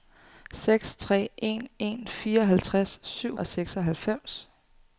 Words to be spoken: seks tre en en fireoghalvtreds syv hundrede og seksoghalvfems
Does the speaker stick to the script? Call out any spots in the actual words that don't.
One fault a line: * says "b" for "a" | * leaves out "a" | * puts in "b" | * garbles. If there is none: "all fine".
* leaves out "hundrede"